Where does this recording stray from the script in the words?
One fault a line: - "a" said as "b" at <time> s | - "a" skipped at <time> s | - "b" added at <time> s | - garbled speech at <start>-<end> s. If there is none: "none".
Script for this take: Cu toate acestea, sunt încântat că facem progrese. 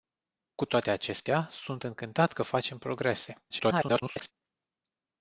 - garbled speech at 3.5-4.3 s